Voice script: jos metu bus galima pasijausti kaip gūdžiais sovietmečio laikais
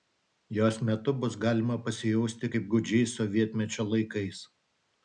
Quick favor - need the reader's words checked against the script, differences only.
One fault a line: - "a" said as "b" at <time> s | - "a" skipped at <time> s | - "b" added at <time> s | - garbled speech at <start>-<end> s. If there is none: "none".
none